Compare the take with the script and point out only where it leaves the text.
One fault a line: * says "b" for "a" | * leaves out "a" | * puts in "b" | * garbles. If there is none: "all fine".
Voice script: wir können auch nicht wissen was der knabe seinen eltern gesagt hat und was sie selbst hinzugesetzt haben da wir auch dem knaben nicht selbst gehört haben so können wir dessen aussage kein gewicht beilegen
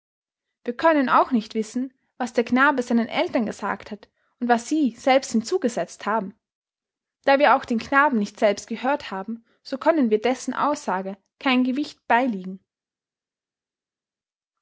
* says "den" for "dem"